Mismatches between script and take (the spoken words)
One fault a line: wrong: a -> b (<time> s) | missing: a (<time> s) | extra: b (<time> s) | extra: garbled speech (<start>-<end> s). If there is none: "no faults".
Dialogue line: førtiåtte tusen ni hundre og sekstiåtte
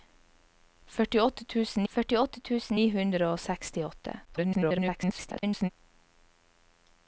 extra: førtiåtte tusen (1.9 s)
extra: garbled speech (4.2-5.7 s)